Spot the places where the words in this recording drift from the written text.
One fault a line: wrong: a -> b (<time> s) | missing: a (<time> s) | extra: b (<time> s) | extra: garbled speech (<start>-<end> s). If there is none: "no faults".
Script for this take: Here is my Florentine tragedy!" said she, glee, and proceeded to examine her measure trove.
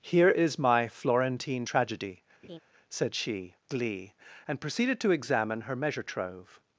no faults